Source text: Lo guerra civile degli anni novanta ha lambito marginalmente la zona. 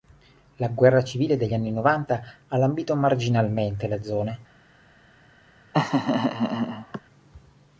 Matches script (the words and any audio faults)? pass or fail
fail